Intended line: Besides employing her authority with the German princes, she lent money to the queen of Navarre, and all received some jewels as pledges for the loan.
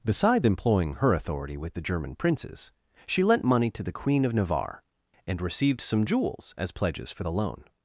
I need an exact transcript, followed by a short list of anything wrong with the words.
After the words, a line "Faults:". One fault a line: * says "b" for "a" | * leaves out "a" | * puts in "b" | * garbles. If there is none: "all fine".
Besides employing her authority with the German princes, she lent money to the queen of Navarre, and received some jewels as pledges for the loan.
Faults:
* leaves out "all"